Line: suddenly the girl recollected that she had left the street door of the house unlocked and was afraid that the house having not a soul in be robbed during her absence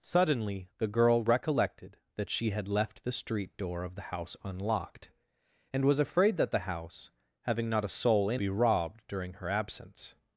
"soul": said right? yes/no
yes